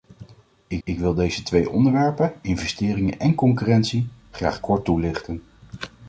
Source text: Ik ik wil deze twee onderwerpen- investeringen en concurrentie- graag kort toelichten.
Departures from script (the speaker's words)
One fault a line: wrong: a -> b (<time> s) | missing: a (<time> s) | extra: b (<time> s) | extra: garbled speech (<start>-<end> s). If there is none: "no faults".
no faults